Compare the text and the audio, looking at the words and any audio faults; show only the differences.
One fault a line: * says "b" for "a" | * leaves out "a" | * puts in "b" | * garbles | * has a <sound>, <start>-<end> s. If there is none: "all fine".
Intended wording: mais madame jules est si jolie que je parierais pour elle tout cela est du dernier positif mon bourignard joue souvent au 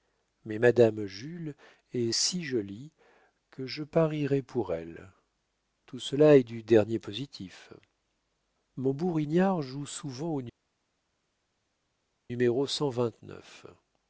all fine